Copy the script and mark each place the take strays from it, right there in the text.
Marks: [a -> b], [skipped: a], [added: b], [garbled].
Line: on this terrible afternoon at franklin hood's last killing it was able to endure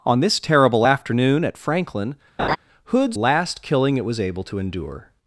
on this terrible afternoon at franklin hood's last killing it was able to endure